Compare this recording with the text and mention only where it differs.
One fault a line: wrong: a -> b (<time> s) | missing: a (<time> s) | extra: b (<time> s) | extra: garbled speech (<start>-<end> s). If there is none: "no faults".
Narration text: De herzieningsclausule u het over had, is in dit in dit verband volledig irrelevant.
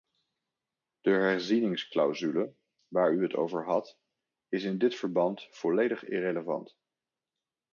extra: waar (2.9 s)
missing: in dit (5.0 s)